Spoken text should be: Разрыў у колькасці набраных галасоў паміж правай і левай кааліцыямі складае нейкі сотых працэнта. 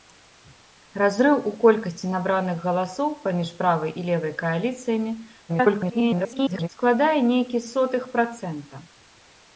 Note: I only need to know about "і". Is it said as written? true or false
true